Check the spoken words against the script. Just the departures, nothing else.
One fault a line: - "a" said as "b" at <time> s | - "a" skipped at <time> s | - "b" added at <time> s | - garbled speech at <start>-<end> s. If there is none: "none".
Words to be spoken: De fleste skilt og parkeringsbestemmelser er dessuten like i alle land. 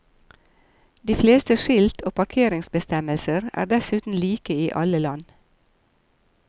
none